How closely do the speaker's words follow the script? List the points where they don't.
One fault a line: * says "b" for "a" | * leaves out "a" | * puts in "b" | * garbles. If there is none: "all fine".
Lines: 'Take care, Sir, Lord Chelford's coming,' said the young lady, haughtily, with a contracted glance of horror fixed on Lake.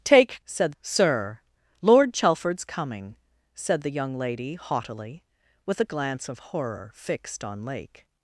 * says "said" for "care"
* leaves out "contracted"